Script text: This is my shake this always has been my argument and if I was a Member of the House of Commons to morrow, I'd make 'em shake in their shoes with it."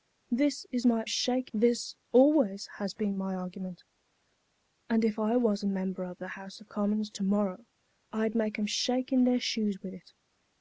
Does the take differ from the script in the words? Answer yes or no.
no